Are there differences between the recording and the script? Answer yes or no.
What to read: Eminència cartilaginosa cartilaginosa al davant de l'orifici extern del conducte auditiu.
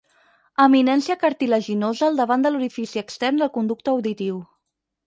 yes